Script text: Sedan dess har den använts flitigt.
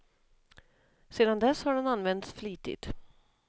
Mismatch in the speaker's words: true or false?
false